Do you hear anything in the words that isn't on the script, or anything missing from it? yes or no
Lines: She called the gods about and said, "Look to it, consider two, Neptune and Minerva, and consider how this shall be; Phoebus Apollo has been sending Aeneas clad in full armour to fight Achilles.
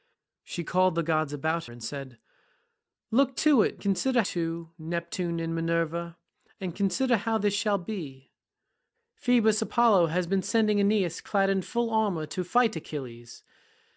no